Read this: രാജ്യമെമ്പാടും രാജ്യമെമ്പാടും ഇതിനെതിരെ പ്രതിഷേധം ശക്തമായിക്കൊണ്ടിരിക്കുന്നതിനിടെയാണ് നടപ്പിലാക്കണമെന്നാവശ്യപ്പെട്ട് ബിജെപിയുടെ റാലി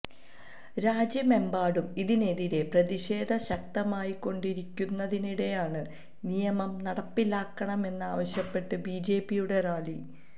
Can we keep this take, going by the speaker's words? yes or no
no